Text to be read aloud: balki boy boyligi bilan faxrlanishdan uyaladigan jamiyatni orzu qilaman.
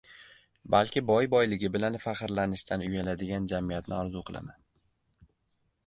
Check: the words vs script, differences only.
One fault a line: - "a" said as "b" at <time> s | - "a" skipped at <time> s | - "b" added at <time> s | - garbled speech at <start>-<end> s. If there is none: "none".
none